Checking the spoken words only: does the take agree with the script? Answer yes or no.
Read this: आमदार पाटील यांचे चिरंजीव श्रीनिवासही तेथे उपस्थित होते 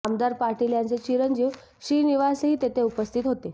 yes